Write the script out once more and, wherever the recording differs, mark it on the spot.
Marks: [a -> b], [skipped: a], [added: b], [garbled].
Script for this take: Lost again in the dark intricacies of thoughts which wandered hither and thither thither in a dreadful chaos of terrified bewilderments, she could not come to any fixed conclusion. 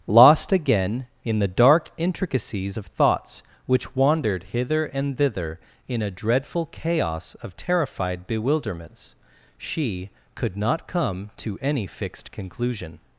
Lost again in the dark intricacies of thoughts which wandered hither and thither [skipped: thither] in a dreadful chaos of terrified bewilderments, she could not come to any fixed conclusion.